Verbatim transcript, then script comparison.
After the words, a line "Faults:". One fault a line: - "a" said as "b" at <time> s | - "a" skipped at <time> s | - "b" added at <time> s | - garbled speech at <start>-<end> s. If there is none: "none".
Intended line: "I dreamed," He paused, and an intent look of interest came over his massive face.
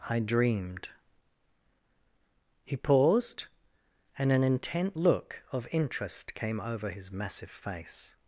"I dreamed," He paused, and an intent look of interest came over his massive face.
Faults:
none